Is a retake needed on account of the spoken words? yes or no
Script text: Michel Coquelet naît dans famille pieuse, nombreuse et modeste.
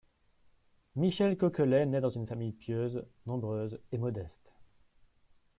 yes